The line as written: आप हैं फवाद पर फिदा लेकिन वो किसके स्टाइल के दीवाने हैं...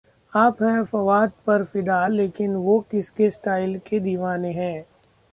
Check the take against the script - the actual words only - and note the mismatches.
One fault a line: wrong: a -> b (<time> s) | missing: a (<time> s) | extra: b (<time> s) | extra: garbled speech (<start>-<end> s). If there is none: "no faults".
no faults